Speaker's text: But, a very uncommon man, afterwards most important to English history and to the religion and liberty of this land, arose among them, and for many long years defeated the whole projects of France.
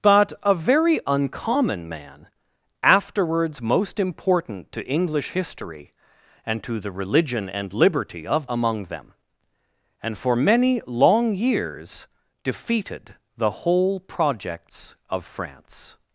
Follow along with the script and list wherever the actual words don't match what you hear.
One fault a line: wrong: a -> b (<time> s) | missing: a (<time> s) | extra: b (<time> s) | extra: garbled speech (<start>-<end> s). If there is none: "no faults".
missing: this land arose (8.5 s)